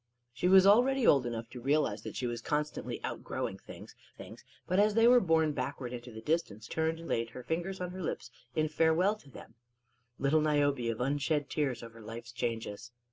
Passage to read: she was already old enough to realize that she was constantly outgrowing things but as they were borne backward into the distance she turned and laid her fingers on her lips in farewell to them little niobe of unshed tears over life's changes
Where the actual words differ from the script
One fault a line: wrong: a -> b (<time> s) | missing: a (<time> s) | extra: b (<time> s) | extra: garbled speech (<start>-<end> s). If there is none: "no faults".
extra: things (4.1 s)
missing: she (6.7 s)